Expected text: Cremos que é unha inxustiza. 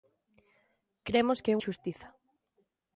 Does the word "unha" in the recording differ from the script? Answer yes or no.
yes